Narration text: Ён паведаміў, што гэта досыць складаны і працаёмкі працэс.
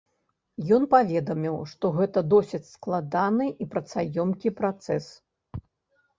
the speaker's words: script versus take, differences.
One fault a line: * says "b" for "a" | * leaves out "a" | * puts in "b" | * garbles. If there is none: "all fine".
all fine